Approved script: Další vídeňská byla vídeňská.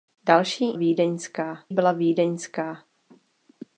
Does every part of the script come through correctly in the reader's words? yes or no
yes